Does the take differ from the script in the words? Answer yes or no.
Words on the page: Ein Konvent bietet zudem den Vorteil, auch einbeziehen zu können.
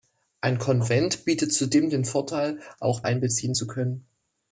no